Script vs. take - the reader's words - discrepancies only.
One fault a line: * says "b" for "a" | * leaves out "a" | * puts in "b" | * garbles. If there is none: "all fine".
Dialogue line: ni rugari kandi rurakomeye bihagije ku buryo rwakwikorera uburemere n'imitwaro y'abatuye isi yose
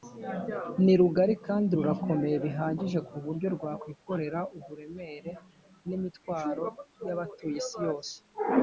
all fine